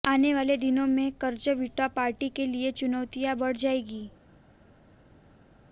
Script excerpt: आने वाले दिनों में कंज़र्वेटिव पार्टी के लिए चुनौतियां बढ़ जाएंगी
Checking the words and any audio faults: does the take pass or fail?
pass